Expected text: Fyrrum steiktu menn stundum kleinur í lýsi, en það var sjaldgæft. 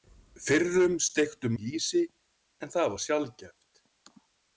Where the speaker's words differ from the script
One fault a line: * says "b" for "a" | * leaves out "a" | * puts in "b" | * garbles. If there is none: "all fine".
* leaves out "menn stundum kleinur"